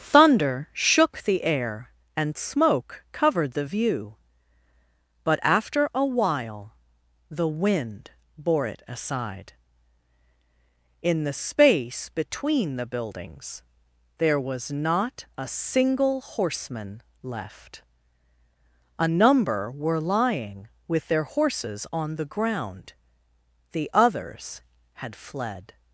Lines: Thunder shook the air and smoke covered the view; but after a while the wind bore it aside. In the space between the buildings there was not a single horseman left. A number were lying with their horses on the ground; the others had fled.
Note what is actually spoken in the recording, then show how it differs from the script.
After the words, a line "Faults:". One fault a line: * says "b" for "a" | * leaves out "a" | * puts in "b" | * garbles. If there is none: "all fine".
Thunder shook the air and smoke covered the view; but after a while the wind bore it aside. In the space between the buildings there was not a single horseman left. A number were lying with their horses on the ground; the others had fled.
Faults:
all fine